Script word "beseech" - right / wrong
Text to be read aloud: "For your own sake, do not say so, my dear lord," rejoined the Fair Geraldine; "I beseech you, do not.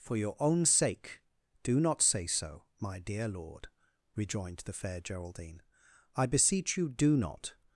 right